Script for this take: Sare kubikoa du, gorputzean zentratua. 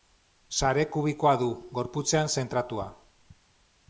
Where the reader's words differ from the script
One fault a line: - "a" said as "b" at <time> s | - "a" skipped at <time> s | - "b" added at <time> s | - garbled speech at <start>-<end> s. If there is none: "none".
none